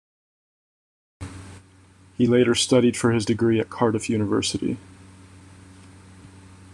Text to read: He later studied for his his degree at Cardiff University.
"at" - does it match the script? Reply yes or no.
yes